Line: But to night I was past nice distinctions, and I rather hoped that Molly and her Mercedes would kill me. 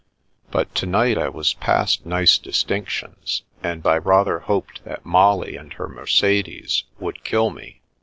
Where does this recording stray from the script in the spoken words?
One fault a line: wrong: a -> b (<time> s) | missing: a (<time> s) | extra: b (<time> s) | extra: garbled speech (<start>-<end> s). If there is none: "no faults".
no faults